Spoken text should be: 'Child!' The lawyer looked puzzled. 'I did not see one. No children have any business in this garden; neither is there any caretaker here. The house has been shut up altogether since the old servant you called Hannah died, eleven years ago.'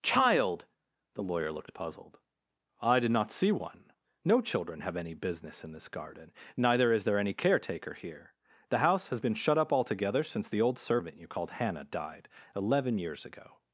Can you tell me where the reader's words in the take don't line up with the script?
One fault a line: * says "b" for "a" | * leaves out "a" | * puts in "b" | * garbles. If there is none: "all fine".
all fine